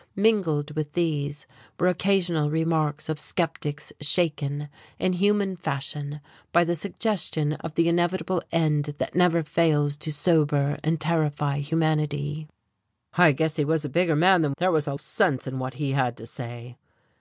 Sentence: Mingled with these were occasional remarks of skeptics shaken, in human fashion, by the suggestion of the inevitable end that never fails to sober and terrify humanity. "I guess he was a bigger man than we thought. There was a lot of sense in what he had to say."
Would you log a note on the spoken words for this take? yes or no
yes